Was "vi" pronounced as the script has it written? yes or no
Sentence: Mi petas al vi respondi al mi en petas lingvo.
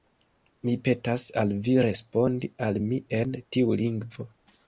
yes